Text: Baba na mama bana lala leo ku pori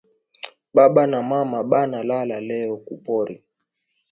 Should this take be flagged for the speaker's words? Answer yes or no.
no